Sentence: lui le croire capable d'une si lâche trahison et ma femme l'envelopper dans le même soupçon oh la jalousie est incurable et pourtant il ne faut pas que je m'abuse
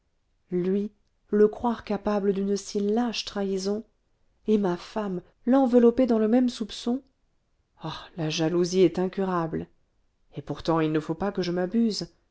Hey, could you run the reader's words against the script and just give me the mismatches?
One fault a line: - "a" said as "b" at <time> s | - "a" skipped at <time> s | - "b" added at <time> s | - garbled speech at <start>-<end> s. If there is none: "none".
none